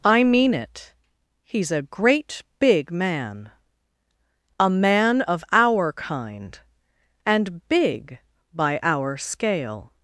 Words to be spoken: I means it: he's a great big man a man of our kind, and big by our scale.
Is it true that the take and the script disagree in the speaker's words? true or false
true